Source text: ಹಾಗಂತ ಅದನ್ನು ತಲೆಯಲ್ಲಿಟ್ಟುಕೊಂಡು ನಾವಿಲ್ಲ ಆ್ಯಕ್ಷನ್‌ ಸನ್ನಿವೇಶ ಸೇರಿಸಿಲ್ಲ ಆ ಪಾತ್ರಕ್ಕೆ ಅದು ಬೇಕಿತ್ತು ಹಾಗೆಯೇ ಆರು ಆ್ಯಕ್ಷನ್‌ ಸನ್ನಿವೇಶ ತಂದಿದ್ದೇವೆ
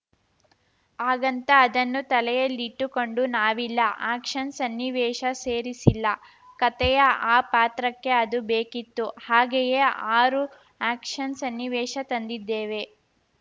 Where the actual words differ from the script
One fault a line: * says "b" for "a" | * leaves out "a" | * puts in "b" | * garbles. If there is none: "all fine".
* puts in "ಕತೆಯ"